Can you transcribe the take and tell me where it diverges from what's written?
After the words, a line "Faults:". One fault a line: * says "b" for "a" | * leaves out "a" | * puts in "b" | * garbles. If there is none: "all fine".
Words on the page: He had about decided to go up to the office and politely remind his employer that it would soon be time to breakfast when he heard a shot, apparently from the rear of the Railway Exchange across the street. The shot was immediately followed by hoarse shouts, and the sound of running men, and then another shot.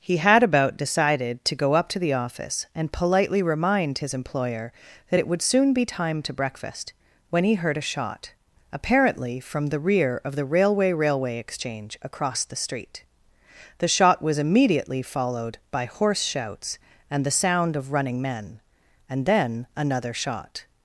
He had about decided to go up to the office and politely remind his employer that it would soon be time to breakfast when he heard a shot, apparently from the rear of the Railway Railway Exchange across the street. The shot was immediately followed by hoarse shouts, and the sound of running men, and then another shot.
Faults:
* puts in "Railway"